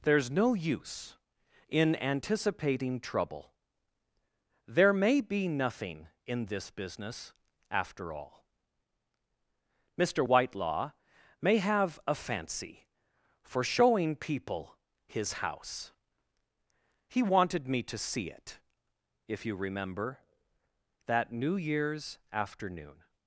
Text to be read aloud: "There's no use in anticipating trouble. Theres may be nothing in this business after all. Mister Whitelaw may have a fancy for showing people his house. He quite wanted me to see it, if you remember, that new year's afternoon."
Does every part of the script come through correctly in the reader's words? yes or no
no